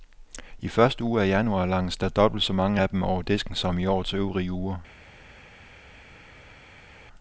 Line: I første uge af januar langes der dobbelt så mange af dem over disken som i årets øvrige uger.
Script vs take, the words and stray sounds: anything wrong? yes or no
no